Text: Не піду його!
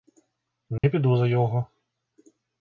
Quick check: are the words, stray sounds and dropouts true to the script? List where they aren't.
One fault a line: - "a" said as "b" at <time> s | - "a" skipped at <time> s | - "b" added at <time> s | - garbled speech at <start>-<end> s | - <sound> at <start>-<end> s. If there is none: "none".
- dropout at 0.8-0.8 s
- "за" added at 1.2 s